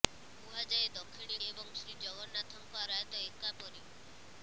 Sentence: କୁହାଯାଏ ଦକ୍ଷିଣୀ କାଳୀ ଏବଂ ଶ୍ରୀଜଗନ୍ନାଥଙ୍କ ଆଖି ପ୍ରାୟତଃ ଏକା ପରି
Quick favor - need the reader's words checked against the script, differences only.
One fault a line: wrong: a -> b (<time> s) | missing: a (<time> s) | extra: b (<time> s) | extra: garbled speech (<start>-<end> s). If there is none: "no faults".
missing: କାଳୀ (1.4 s)
missing: ଆଖି (2.8 s)